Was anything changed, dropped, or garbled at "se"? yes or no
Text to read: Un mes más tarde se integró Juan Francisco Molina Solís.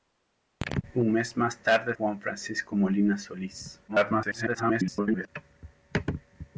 yes